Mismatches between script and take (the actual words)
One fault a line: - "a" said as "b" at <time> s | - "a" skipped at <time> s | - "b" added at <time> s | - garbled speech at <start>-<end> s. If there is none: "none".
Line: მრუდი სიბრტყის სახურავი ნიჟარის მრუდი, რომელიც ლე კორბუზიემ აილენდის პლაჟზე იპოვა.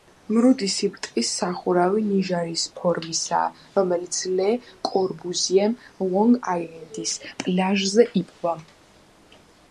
- "მრუდი" said as "ფორმისაა" at 2.8 s
- "ლონგ" added at 6.1 s